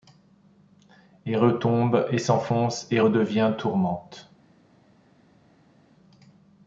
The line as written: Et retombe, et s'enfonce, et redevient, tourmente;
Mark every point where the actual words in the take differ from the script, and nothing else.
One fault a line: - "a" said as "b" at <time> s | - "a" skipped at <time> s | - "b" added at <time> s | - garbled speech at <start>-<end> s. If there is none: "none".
none